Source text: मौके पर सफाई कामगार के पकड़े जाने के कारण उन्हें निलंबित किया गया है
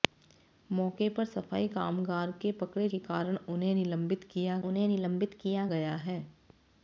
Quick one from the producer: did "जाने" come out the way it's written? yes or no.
no